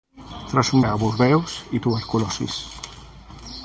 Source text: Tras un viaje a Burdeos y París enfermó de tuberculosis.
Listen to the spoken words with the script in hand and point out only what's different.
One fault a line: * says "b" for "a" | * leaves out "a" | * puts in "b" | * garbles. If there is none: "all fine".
* leaves out "viaje"
* leaves out "París enfermó de"